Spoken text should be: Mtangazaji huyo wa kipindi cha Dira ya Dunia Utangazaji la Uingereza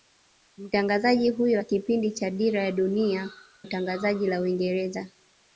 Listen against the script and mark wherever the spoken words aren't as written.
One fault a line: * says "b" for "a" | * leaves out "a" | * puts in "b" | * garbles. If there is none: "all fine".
all fine